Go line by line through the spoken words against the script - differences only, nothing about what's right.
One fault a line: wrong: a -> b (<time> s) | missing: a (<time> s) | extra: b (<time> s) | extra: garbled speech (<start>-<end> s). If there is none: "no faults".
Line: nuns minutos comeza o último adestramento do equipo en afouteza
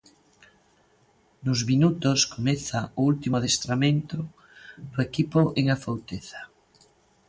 no faults